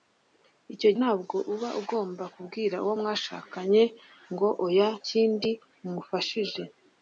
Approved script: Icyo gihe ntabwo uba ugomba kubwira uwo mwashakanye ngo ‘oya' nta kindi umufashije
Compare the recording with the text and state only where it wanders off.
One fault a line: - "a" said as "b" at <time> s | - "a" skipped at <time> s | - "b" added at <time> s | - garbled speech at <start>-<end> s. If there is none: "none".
- "gihe" skipped at 0.9 s
- "nta" skipped at 4.9 s